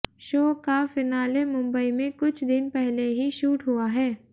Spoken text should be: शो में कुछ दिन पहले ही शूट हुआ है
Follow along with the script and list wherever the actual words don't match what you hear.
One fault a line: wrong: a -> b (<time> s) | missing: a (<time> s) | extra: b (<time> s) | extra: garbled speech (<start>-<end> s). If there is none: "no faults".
extra: का फिनाले मुंबई (0.6 s)